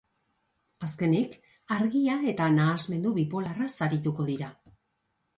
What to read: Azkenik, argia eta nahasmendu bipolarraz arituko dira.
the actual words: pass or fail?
pass